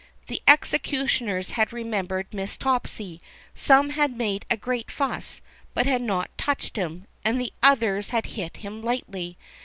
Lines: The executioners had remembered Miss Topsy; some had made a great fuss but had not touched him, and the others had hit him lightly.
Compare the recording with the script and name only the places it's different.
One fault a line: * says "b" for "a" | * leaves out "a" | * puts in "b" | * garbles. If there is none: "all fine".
all fine